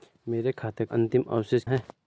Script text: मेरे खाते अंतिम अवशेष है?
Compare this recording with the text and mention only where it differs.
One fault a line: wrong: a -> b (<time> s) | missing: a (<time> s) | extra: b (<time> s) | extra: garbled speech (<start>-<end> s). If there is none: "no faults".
no faults